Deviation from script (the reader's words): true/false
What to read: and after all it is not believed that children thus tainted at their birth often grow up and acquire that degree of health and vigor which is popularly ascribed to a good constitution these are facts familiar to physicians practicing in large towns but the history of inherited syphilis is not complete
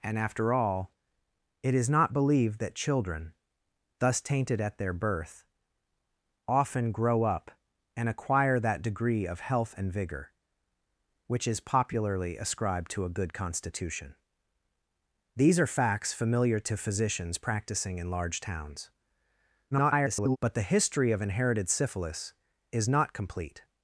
true